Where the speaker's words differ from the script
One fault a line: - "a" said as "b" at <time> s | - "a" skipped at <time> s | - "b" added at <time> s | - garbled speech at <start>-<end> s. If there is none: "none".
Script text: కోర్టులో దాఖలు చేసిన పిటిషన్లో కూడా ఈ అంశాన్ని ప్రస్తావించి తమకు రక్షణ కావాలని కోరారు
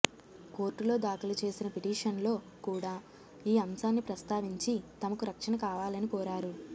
none